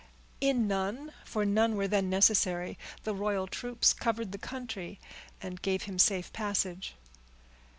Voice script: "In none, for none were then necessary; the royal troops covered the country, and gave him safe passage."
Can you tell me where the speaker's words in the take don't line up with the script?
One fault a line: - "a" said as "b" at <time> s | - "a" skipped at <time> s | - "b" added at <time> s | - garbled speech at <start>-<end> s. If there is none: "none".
none